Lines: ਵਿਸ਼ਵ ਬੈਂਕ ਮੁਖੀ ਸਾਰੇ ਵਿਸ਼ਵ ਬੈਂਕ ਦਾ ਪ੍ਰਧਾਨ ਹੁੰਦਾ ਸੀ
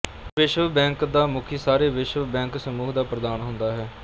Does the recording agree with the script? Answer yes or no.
no